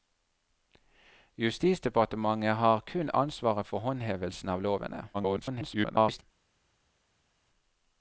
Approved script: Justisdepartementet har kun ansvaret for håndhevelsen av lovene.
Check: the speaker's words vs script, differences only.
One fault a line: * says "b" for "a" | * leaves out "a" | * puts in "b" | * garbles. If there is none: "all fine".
* garbles